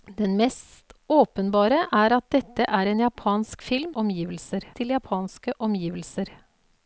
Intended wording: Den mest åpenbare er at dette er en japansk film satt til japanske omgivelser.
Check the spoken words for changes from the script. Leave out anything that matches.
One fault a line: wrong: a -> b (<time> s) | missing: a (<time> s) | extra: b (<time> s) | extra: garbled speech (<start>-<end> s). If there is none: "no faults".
wrong: satt -> omgivelser (3.9 s)